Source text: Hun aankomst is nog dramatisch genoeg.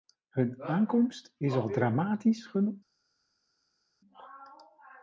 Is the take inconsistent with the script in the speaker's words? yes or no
yes